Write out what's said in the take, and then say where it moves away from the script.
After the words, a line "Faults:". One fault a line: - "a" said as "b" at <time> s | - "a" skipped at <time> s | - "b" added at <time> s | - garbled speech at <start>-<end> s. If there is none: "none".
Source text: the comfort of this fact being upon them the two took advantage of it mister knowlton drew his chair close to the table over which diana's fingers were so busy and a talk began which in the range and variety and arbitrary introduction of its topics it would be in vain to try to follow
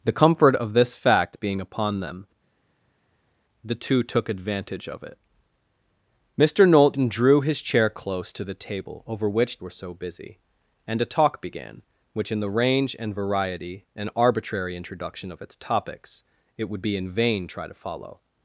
the comfort of this fact being upon them the two took advantage of it mister knowlton drew his chair close to the table over which were so busy and a talk began which in the range and variety and arbitrary introduction of its topics it would be in vain try to follow
Faults:
- "diana's fingers" skipped at 9.6 s
- "to" skipped at 17.5 s